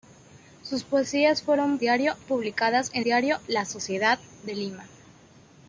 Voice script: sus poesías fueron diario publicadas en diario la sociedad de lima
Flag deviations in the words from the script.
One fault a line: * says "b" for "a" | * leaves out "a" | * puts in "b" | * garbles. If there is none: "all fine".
all fine